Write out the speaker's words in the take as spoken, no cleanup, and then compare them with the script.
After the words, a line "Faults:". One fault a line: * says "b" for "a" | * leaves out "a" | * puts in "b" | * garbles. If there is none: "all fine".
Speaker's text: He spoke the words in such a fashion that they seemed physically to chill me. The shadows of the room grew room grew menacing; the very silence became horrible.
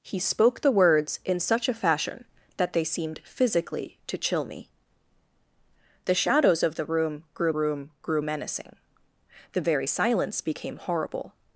He spoke the words in such a fashion that they seemed physically to chill me. The shadows of the room grew room grew menacing; the very silence became horrible.
Faults:
all fine